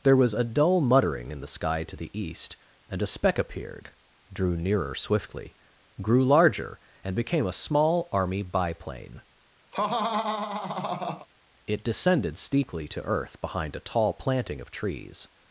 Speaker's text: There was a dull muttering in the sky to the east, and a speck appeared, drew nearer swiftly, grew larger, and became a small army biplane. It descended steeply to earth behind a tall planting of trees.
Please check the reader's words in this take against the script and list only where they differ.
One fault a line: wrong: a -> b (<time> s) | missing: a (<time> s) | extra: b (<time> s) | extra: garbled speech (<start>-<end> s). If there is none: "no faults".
no faults